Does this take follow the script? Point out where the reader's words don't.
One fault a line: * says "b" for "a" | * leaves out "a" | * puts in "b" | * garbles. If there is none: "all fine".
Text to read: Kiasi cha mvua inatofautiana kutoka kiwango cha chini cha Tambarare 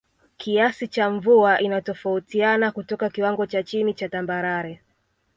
all fine